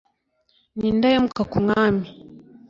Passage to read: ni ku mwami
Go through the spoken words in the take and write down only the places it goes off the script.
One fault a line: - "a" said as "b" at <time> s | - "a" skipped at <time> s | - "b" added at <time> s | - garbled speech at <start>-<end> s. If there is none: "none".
- "indahemuka" added at 0.9 s